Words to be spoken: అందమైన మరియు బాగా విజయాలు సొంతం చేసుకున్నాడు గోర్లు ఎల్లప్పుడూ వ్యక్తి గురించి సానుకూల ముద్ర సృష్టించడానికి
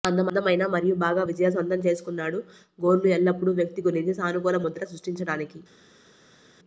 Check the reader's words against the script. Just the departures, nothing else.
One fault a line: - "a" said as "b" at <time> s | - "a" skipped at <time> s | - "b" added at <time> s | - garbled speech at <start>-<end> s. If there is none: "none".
none